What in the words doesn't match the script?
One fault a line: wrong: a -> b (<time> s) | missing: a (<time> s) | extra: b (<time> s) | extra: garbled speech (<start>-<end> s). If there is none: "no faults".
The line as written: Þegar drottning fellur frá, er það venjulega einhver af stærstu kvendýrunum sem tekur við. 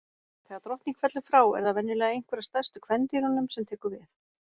no faults